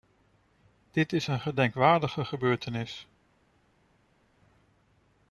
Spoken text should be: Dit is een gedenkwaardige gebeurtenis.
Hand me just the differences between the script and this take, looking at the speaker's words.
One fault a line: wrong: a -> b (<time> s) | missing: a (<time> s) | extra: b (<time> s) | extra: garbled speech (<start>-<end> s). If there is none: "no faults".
no faults